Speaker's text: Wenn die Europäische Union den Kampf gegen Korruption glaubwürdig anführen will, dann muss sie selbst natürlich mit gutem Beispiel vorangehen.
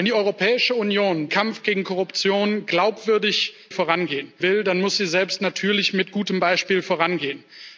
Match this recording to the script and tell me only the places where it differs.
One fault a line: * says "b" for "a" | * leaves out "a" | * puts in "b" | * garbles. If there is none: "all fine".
* leaves out "den"
* says "vorangehen" for "anführen"